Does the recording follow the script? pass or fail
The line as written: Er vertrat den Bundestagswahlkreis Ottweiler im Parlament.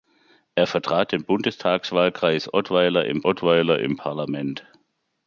fail